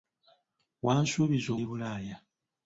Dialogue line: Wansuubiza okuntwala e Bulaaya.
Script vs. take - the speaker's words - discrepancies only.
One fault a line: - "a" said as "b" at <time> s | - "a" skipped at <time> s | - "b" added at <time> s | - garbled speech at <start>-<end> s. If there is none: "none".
- "okuntwala" skipped at 1.5 s